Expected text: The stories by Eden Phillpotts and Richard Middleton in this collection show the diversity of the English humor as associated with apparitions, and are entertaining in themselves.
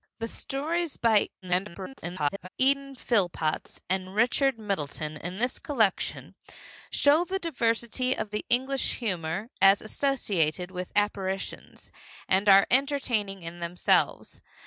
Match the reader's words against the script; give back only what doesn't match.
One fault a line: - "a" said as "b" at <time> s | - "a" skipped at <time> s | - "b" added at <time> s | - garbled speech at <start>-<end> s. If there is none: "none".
- garbled speech at 1.4-2.5 s